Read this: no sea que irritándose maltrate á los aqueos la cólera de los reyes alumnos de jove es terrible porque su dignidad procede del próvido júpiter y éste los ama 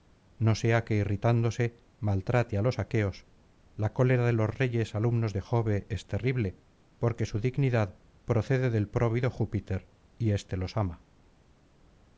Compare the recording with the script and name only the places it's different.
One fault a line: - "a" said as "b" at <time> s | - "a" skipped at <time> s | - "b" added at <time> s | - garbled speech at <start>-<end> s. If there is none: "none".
none